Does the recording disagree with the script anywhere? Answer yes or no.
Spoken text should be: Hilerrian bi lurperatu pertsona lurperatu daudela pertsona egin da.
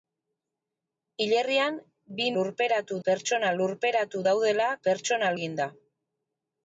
no